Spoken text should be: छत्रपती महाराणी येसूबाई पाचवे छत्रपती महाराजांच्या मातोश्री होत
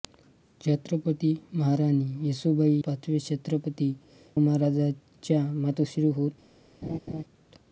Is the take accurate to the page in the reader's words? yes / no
yes